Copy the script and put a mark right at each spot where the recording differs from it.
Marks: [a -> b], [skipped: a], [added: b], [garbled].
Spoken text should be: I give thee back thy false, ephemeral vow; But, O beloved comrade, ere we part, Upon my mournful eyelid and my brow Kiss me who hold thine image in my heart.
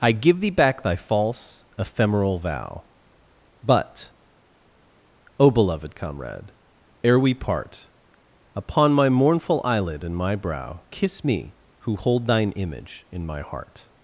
I give thee back thy false, ephemeral vow; But, O beloved comrade, ere we part, Upon my mournful eyelid and my brow Kiss me who hold thine image in my heart.